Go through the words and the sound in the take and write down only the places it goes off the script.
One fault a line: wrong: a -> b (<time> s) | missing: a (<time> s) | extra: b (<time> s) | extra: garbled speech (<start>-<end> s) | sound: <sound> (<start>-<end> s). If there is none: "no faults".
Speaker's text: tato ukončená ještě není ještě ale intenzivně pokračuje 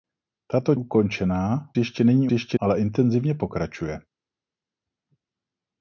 no faults